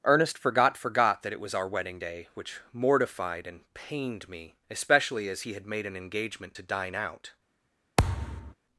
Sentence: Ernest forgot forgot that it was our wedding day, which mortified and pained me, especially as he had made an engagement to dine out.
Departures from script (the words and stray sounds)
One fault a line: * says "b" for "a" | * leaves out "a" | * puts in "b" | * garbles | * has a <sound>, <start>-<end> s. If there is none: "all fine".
* has a thud, 8.0-8.5 s